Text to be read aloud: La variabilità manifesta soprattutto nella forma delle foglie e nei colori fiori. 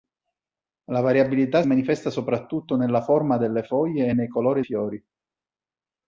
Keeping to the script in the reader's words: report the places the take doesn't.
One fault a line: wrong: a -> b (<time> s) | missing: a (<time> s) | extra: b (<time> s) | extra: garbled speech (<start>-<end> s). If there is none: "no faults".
no faults